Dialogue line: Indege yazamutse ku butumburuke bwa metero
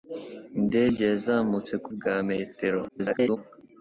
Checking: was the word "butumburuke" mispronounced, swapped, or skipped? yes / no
yes